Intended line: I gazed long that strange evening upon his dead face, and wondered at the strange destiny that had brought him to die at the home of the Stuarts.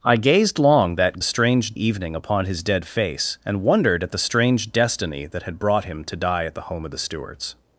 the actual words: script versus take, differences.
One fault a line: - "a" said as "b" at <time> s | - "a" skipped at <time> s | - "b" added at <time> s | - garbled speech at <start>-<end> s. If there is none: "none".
none